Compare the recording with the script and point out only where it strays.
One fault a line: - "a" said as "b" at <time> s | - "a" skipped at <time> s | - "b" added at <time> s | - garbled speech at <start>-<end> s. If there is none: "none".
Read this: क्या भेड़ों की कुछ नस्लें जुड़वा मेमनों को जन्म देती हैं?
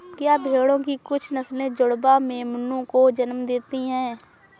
none